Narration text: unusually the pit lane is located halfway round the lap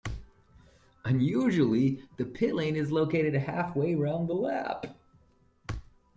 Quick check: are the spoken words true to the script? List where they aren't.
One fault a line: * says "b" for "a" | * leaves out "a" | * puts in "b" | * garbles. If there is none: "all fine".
all fine